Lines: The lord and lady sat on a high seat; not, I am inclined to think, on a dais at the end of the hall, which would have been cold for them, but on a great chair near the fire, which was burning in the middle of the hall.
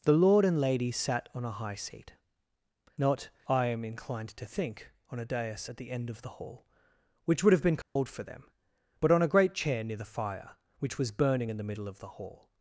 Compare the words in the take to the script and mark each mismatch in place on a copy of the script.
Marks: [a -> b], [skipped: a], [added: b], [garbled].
The lord and lady sat on a high seat; not, I am inclined to think, on a dais at the end of the hall, which would have been cold for them, but on a great chair near the fire, which was burning in the middle of the hall.